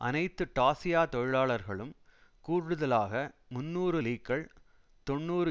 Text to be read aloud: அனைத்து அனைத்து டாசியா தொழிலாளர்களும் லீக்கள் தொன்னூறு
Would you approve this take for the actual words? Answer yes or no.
no